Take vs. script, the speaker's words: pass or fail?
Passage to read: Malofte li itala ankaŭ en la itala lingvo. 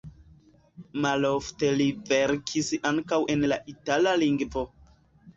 fail